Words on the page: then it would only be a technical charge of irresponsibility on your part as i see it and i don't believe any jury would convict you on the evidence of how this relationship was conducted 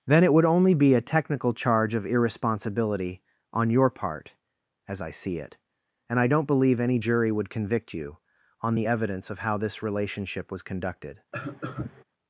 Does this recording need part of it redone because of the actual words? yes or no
no